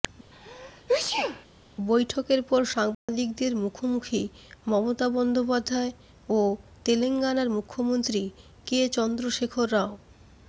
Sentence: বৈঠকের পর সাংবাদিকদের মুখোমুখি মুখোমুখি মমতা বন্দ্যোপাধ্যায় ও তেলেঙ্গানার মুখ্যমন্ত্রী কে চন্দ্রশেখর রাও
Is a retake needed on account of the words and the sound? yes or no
yes